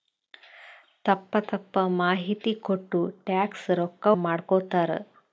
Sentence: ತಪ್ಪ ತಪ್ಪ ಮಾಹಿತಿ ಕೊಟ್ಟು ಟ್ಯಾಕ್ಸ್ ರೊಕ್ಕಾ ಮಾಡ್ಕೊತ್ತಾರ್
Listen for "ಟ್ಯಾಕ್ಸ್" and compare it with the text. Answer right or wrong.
right